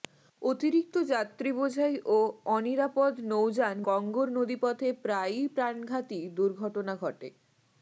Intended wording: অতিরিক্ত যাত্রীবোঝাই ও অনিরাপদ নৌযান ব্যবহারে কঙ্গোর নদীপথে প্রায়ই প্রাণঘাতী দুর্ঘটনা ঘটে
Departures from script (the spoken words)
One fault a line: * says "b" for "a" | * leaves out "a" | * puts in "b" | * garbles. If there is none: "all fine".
* leaves out "ব্যবহারে"